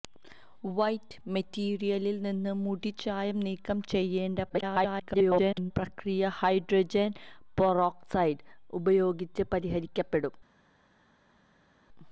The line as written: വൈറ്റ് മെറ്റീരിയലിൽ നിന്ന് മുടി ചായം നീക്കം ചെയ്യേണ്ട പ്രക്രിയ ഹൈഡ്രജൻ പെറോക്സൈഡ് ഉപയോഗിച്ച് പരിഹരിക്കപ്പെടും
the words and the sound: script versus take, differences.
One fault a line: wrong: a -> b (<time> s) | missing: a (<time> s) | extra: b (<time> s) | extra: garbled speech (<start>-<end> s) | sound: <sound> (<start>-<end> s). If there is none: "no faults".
extra: garbled speech (4.5-5.7 s)